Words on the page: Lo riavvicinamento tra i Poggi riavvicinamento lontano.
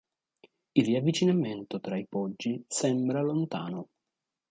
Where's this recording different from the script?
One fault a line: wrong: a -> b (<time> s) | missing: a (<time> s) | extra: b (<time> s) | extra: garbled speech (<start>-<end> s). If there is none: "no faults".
wrong: Lo -> Il (0.7 s)
wrong: riavvicinamento -> sembra (2.7 s)